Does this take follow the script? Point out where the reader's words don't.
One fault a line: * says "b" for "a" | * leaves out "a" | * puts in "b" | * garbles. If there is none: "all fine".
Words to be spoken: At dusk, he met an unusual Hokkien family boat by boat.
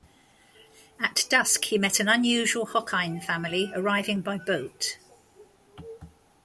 * says "arriving" for "boat"